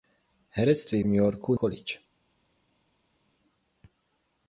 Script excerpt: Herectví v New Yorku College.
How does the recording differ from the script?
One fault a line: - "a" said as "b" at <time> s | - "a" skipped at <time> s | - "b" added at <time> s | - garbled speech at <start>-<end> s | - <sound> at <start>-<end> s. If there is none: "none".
none